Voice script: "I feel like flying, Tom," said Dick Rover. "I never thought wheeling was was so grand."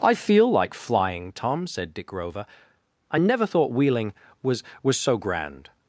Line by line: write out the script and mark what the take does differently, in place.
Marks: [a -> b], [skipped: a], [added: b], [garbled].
"I feel like flying, Tom," said Dick Rover. "I never thought wheeling was was so grand."